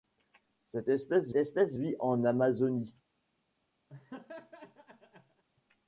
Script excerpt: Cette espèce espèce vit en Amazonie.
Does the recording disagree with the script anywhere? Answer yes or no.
no